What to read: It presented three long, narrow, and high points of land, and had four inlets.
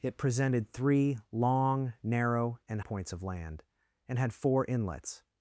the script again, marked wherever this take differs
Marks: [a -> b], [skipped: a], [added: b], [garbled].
It presented three long, narrow, and [skipped: high] points of land, and had four inlets.